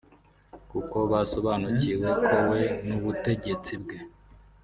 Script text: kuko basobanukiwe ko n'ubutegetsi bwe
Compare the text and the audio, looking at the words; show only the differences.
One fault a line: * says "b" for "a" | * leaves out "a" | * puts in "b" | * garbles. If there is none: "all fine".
* puts in "we"